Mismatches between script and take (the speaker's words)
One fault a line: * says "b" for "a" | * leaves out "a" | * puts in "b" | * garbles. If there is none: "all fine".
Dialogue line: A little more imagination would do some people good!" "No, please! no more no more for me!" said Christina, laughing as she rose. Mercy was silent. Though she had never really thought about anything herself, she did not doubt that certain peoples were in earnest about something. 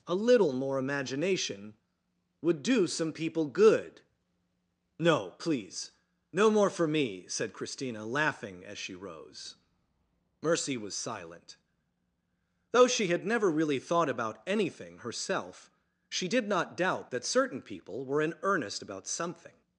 * leaves out "no more"
* says "people" for "peoples"